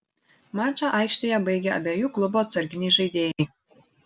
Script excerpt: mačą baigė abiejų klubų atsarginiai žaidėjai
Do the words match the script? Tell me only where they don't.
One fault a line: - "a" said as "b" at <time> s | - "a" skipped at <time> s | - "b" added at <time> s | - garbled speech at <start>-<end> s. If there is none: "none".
- "aikštėje" added at 1.0 s